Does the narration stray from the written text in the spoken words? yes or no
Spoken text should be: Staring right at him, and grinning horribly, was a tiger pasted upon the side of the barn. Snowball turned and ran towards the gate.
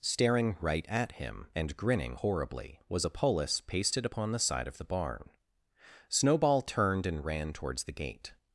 yes